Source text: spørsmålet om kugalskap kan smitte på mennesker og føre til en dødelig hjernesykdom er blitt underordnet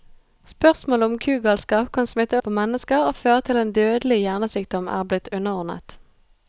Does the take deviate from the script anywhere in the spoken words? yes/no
no